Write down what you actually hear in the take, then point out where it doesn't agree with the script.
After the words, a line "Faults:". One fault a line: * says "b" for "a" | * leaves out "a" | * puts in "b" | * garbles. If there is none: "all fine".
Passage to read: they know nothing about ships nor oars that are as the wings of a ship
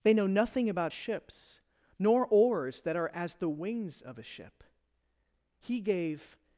they know nothing about ships nor oars that are as the wings of a ship he gave
Faults:
* puts in "he gave"